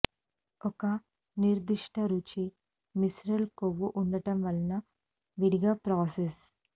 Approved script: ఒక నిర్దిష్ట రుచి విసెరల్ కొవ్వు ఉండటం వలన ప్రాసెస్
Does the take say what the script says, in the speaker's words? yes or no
no